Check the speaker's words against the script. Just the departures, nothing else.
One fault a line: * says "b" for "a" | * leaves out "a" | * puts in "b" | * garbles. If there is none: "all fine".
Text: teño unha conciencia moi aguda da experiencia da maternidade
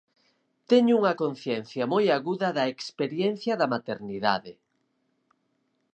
all fine